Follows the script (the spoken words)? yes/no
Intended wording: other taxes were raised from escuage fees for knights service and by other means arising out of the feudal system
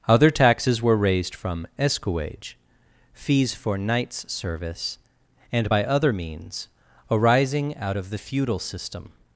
yes